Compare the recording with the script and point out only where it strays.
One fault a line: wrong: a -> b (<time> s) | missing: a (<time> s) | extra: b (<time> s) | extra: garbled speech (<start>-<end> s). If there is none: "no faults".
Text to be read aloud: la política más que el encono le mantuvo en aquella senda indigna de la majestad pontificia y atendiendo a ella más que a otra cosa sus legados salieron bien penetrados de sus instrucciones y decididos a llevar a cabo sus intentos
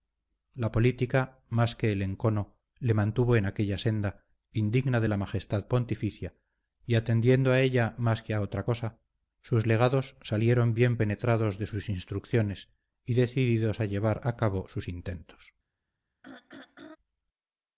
no faults